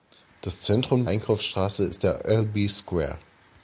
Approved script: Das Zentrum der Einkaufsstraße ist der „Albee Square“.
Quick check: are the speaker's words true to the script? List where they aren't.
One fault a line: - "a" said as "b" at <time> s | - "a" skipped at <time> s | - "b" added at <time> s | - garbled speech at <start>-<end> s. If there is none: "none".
- "der" skipped at 1.1 s